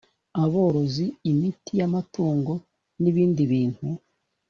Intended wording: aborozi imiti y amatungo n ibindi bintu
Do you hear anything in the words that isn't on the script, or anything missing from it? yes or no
no